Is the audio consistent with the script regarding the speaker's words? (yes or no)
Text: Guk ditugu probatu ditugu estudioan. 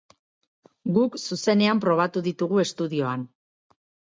no